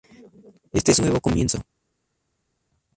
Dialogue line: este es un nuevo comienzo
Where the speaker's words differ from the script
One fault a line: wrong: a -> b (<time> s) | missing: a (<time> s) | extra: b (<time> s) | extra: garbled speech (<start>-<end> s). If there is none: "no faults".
missing: un (1.0 s)